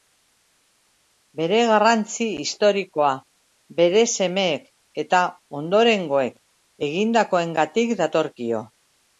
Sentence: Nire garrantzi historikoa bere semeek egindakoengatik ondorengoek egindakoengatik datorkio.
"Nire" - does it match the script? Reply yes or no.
no